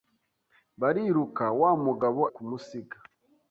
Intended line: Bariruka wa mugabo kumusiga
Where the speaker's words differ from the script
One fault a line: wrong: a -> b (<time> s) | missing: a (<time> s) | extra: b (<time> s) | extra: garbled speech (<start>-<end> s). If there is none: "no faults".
no faults